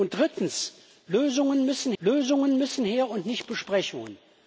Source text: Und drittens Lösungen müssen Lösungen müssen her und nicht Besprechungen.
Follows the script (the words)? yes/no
yes